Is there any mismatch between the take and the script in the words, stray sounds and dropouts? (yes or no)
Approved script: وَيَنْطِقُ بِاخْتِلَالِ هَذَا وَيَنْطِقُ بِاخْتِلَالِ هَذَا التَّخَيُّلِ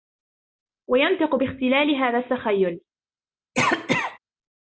yes